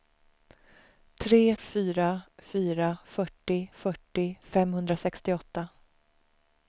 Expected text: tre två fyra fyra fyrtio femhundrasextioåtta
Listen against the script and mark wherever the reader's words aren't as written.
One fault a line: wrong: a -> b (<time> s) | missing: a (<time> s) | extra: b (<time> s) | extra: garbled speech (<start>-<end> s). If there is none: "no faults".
wrong: två -> fyra (1.6 s)
wrong: fyra -> fyrtio (3.1 s)